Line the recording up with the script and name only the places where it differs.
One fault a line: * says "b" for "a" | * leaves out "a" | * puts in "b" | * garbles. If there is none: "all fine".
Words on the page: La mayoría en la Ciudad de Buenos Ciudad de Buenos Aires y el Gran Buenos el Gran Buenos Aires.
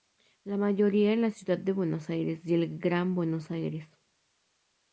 * leaves out "Ciudad de Buenos"
* leaves out "el Gran Buenos"